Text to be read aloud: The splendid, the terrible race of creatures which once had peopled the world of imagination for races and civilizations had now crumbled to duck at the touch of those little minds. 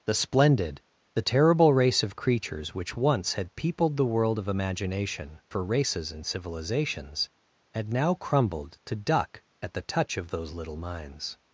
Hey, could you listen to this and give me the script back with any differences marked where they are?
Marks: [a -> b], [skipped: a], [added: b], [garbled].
The splendid, the terrible race of creatures which once had peopled the world of imagination for races and civilizations had now crumbled to duck at the touch of those little minds.